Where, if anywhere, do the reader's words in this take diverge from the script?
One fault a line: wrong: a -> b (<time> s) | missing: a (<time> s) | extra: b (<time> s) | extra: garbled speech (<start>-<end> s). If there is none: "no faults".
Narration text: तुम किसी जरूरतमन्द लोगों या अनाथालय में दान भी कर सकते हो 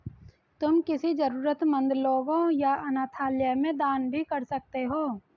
no faults